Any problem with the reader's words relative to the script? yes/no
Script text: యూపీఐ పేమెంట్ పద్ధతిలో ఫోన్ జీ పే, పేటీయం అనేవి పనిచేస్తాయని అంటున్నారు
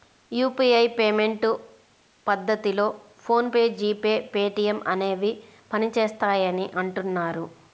yes